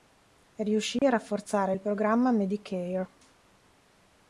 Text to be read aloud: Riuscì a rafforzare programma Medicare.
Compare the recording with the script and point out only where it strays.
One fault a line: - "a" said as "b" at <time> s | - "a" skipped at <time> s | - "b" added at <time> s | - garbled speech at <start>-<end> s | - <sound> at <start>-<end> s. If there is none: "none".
- dropout at 1.0-1.0 s
- "il" added at 1.7 s